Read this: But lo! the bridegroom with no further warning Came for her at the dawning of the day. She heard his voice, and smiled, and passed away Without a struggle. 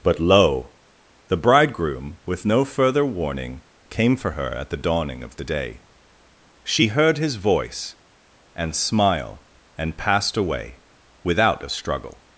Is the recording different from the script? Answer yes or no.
yes